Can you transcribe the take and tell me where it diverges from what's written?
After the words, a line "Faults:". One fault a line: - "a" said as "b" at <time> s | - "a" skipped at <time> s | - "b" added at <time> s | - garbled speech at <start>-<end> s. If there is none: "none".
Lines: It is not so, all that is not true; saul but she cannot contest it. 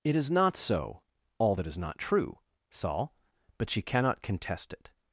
It is not so, all that is not true; saul but she cannot contest it.
Faults:
none